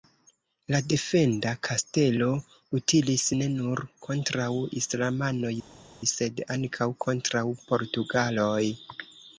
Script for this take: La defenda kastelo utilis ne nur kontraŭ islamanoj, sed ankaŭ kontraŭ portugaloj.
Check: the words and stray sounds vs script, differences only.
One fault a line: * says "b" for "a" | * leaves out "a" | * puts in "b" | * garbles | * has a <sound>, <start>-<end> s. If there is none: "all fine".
all fine